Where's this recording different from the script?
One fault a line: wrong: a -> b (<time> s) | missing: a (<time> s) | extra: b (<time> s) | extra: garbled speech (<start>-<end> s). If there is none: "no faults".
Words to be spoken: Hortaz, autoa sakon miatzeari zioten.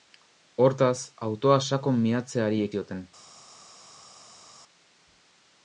no faults